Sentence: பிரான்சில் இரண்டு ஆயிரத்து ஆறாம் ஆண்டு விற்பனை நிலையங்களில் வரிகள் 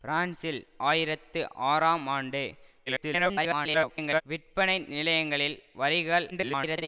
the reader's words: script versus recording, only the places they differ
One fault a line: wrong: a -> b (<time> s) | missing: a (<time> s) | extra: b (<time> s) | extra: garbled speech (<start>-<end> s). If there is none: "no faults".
missing: இரண்டு (0.6 s)
extra: garbled speech (2.9-4.2 s)
extra: garbled speech (6.3-6.9 s)